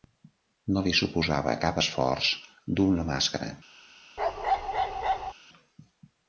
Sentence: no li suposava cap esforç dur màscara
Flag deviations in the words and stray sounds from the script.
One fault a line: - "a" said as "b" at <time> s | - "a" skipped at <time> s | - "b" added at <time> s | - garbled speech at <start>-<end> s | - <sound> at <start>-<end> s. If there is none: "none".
- "una" added at 3.0 s
- bark at 4.2-5.3 s